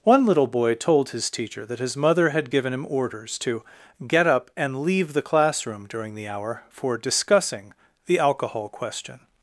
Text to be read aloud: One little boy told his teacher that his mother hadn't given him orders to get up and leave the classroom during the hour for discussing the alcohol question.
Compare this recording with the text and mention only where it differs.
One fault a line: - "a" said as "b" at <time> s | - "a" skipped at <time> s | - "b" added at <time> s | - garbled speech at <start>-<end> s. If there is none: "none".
- "hadn't" said as "had" at 2.3 s